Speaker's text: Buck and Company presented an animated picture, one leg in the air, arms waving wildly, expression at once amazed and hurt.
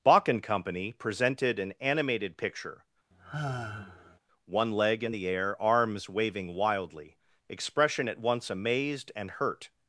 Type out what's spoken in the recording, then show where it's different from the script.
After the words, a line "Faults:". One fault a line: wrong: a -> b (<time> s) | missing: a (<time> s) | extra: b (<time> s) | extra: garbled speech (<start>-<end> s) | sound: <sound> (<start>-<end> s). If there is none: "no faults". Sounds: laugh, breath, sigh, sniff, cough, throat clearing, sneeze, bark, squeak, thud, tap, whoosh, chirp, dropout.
Bach and Company presented an animated picture, one leg in the air, arms waving wildly, expression at once amazed and hurt.
Faults:
wrong: Buck -> Bach (0.0 s)
sound: sigh (3.1-4.2 s)